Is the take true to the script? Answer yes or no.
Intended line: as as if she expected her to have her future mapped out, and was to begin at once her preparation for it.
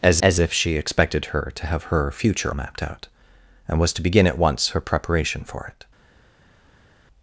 yes